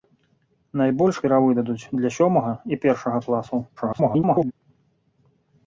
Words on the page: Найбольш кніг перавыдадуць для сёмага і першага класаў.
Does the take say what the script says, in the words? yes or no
no